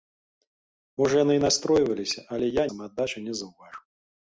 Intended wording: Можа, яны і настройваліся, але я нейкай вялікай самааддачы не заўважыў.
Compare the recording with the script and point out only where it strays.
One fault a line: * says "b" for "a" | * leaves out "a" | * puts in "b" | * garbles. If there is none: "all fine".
* leaves out "нейкай вялікай"